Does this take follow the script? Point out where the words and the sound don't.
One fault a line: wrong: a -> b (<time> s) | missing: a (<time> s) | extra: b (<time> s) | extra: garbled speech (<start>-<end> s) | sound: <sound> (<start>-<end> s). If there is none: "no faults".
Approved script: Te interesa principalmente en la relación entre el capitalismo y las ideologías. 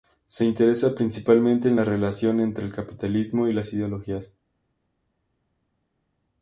wrong: Te -> Se (0.2 s)